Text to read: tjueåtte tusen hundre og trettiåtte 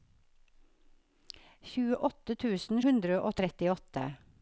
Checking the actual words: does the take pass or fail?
pass